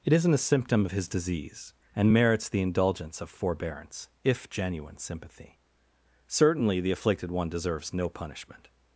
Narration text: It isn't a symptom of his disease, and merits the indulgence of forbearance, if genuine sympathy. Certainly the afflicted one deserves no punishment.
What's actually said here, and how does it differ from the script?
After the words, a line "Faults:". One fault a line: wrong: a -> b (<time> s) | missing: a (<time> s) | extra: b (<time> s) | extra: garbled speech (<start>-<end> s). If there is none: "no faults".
It isn't a symptom of his disease, and merits the indulgence of forbearance, if genuine sympathy. Certainly the afflicted one deserves no punishment.
Faults:
no faults